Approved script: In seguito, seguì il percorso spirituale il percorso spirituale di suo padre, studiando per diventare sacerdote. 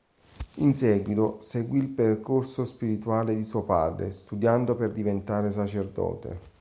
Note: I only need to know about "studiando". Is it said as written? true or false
true